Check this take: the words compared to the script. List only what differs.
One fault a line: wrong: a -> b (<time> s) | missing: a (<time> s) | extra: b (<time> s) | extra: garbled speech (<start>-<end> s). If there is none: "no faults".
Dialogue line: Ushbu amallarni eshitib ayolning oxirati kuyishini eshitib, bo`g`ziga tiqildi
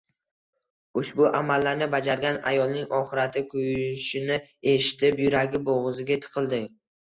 wrong: eshitib -> bajargan (1.9 s)
extra: yuragi (5.3 s)